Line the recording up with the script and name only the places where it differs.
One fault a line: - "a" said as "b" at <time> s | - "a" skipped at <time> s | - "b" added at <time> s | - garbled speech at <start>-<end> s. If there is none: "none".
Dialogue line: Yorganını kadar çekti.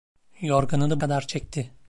none